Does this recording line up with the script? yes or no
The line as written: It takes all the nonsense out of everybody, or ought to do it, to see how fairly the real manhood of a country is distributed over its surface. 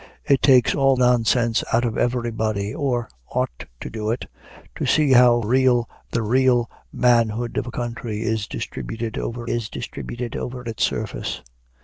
no